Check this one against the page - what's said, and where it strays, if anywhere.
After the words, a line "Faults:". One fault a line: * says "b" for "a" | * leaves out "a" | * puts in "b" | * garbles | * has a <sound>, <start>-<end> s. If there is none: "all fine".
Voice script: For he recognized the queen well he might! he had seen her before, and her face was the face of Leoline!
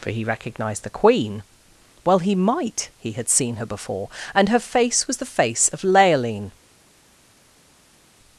For he recognized the queen well he might! he had seen her before, and her face was the face of Leoline!
Faults:
all fine